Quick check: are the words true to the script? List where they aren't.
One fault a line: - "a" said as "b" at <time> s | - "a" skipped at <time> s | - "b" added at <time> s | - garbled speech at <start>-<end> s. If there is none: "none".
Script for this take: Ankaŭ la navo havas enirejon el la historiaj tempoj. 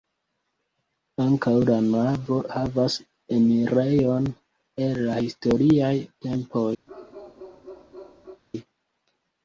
none